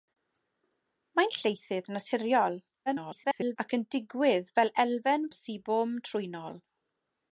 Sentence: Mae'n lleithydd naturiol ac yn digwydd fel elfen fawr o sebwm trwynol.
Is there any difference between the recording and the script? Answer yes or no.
yes